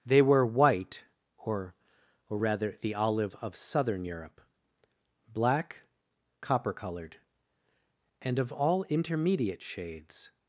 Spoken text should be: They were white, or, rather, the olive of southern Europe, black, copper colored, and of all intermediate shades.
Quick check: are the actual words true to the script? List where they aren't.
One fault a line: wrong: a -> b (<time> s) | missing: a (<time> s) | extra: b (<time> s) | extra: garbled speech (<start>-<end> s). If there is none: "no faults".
extra: or (2.3 s)